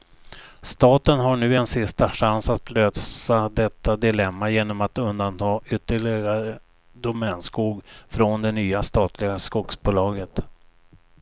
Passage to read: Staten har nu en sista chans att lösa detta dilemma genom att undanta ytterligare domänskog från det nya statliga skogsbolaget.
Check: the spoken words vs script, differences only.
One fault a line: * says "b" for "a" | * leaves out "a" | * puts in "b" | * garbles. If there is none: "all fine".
all fine